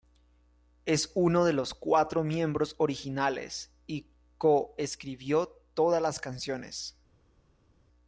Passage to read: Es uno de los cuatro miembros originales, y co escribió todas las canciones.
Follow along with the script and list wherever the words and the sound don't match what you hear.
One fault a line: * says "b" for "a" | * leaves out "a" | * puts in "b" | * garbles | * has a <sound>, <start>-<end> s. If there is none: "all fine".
all fine